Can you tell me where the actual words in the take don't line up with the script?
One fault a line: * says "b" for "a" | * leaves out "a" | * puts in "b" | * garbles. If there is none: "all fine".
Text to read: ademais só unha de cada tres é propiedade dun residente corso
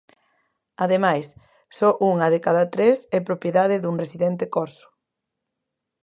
all fine